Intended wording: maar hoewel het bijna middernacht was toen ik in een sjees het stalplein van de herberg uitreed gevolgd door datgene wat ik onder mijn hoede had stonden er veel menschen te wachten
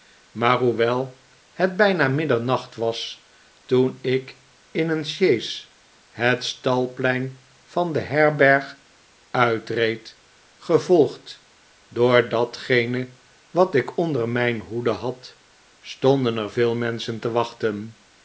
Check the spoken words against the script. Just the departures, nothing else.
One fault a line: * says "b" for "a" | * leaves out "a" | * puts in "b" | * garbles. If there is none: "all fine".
all fine